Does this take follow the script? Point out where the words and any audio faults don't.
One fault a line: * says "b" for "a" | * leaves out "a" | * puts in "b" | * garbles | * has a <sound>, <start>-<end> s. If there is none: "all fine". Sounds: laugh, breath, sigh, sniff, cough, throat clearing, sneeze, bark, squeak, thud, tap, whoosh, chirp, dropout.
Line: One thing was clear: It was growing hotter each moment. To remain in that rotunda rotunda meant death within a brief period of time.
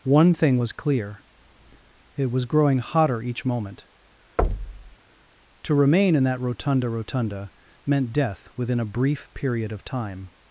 * has a thud, 4.4-5.0 s